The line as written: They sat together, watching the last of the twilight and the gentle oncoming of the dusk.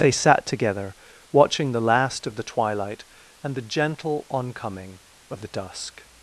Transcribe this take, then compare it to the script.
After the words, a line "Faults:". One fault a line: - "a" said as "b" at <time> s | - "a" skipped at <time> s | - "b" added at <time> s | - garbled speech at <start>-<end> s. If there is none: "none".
They sat together, watching the last of the twilight and the gentle oncoming of the dusk.
Faults:
none